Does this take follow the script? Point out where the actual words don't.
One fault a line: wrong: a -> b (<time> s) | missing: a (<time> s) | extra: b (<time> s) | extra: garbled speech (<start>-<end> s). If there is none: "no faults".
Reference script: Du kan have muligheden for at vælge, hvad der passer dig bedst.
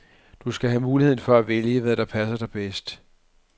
wrong: kan -> skal (0.5 s)